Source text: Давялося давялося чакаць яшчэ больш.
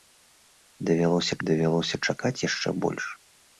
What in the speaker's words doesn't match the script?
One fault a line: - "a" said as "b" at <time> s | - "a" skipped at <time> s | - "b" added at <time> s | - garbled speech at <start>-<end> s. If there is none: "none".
none